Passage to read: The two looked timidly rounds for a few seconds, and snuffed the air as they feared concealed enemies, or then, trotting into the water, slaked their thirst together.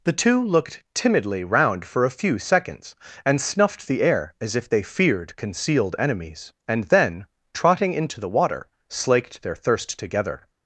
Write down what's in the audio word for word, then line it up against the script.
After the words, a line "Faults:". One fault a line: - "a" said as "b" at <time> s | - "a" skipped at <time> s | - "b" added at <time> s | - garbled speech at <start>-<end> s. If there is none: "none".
The two looked timidly round for a few seconds, and snuffed the air as if they feared concealed enemies, and then, trotting into the water, slaked their thirst together.
Faults:
- "rounds" said as "round" at 1.4 s
- "if" added at 4.5 s
- "or" said as "and" at 6.7 s